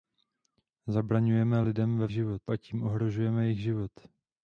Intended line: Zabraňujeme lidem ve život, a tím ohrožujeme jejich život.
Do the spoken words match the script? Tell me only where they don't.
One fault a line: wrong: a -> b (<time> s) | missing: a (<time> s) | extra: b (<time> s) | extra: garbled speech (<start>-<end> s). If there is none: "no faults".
no faults